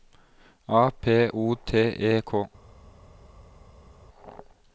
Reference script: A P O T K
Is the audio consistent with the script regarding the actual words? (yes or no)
no